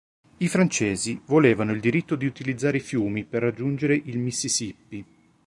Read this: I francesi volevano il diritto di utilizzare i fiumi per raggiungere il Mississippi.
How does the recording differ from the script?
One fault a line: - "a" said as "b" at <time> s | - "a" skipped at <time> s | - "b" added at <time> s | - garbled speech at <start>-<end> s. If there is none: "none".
none